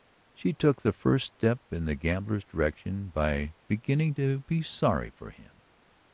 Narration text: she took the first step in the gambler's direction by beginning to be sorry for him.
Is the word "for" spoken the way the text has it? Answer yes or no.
yes